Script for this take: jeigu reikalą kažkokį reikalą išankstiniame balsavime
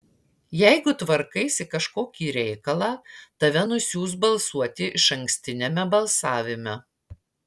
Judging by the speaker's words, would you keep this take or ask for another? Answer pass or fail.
fail